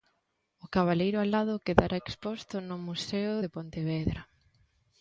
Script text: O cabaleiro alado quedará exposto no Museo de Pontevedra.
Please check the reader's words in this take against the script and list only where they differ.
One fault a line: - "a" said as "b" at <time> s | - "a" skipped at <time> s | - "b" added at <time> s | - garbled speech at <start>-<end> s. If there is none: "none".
none